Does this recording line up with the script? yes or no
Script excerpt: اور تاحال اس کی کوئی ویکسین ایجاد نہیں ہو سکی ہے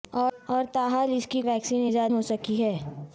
no